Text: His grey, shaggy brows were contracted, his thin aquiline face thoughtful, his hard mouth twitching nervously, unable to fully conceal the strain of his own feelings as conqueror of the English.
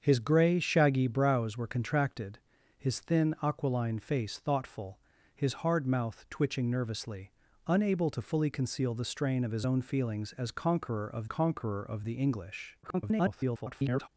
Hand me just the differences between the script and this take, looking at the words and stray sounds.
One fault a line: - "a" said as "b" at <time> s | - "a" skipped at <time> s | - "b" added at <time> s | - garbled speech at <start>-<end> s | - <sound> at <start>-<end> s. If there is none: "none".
- "conqueror of" added at 11.3 s
- garbled speech at 12.8-14.1 s